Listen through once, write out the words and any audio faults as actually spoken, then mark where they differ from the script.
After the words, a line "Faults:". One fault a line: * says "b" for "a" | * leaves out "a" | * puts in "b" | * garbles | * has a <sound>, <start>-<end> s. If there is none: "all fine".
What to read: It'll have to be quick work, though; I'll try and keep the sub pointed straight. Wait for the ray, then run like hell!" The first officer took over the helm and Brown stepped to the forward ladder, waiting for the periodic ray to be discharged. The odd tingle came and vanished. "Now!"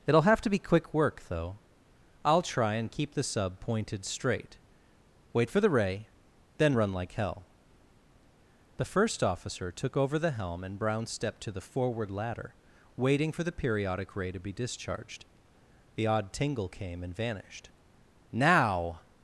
It'll have to be quick work, though; I'll try and keep the sub pointed straight. Wait for the ray, then run like hell!" The first officer took over the helm and Brown stepped to the forward ladder, waiting for the periodic ray to be discharged. The odd tingle came and vanished. "Now!"
Faults:
all fine